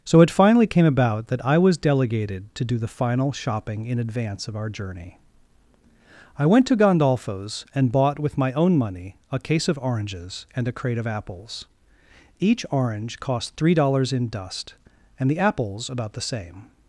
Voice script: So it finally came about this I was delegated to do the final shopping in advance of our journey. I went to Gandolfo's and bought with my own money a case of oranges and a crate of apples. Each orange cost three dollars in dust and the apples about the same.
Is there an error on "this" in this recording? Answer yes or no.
yes